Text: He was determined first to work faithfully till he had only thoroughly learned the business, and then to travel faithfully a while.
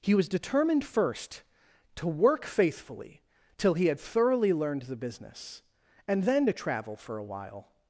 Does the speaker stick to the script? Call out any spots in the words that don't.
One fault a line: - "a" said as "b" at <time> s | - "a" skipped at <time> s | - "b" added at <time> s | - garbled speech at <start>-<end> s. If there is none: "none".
- "only" skipped at 4.0 s
- "faithfully" said as "for" at 7.0 s